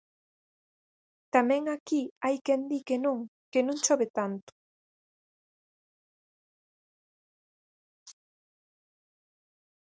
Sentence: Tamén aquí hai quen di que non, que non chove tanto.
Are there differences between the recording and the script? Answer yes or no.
no